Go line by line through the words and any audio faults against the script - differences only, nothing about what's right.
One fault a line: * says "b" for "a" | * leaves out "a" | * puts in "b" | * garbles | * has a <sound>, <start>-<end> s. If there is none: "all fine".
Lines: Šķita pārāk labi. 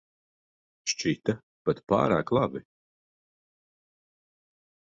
* puts in "pat"